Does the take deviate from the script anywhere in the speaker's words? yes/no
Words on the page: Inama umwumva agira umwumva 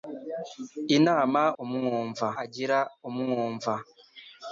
no